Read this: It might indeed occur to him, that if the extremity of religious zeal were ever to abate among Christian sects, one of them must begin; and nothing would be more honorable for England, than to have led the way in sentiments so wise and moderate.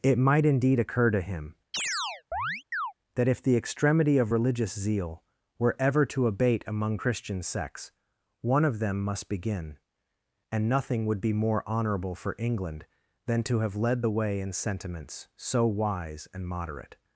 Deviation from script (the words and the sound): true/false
true